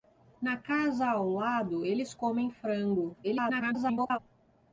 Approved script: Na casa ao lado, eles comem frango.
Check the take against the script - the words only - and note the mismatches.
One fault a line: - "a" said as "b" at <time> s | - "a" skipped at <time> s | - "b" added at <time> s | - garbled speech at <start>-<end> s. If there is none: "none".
- garbled speech at 3.2-4.2 s